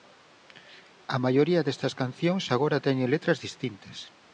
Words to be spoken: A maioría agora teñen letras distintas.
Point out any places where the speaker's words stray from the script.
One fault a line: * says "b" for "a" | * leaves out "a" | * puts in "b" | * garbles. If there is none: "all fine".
* puts in "destas cancións"